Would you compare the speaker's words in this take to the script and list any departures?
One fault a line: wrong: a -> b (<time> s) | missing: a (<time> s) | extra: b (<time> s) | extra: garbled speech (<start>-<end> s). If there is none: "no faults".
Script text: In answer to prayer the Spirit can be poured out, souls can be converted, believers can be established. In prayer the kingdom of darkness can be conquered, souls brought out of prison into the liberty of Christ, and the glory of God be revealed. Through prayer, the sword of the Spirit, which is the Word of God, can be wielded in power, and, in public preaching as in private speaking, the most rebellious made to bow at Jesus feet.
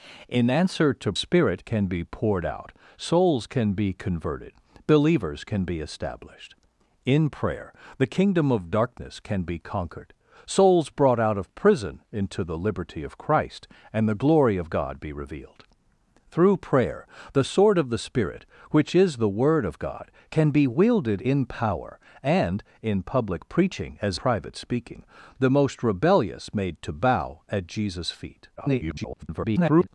missing: prayer the (1.1 s)
missing: in (24.2 s)
extra: garbled speech (28.6-29.9 s)